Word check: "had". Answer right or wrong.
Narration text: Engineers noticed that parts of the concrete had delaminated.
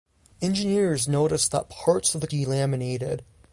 wrong